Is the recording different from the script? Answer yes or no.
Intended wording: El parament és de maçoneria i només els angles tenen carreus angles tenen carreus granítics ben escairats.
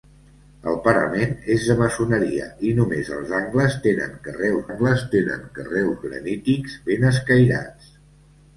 no